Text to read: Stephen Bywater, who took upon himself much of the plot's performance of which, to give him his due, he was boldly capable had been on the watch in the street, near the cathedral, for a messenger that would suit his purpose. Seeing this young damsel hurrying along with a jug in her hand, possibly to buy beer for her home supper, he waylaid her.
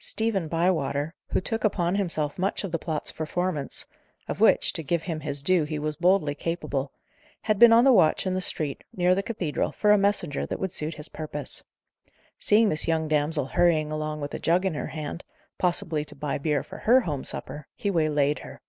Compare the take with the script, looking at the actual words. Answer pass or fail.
pass